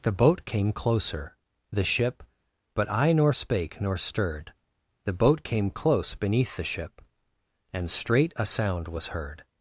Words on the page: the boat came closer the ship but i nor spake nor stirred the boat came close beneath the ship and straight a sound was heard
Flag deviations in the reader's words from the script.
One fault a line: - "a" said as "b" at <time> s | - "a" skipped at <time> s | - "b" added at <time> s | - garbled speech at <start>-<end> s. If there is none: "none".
none